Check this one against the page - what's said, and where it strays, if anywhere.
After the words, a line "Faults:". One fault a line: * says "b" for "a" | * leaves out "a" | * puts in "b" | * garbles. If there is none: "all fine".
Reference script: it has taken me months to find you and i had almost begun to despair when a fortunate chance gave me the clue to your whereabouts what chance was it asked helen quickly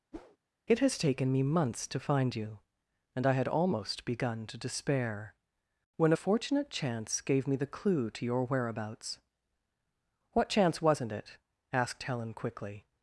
it has taken me months to find you and i had almost begun to despair when a fortunate chance gave me the clue to your whereabouts what chance wasn't it asked helen quickly
Faults:
* says "wasn't" for "was"